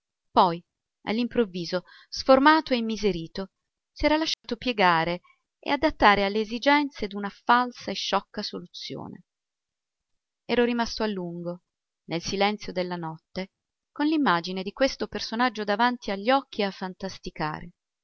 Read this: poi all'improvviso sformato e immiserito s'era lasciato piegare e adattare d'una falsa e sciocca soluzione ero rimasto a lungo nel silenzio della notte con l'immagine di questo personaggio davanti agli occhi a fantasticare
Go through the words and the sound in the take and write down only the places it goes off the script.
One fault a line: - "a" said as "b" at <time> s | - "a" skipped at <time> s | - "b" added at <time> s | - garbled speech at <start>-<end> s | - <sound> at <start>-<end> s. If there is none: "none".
- dropout at 4.3-4.4 s
- "alle esigenze" added at 6.2 s